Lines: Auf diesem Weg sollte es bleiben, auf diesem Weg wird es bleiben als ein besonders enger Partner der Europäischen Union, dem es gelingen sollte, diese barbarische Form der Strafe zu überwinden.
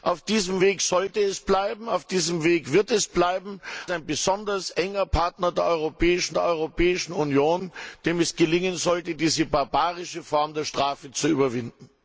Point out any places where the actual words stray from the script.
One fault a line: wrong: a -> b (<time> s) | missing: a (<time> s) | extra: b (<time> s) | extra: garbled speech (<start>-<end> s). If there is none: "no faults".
missing: als (3.6 s)
extra: der Europäischen (6.3 s)